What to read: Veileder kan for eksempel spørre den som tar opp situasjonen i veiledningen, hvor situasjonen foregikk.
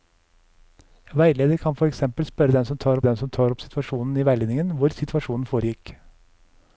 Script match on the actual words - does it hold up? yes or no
no